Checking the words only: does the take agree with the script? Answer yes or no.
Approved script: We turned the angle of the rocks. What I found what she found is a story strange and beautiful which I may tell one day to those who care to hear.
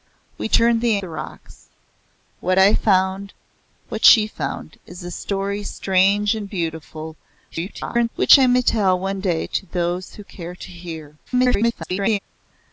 no